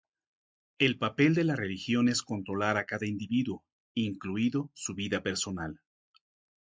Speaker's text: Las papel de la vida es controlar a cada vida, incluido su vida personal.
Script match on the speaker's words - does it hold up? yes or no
no